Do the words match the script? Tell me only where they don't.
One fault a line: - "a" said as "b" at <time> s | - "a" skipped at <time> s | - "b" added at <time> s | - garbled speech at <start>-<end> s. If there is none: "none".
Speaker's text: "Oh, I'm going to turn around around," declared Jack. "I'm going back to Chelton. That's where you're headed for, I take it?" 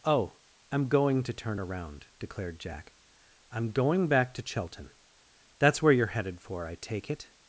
- "around" skipped at 2.1 s